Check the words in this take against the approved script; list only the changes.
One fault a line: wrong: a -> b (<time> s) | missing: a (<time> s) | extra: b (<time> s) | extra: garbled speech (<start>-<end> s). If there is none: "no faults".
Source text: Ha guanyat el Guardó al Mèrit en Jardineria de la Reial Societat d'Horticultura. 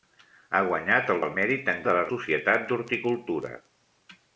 missing: Guardó (1.2 s)
missing: Jardineria (1.8 s)
missing: Reial (2.0 s)